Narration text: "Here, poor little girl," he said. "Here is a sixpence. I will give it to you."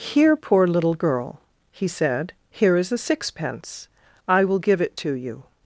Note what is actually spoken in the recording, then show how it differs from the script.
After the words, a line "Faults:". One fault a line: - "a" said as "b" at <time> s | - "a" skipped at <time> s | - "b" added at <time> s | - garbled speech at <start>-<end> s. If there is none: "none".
"Here, poor little girl," he said. "Here is a sixpence. I will give it to you."
Faults:
none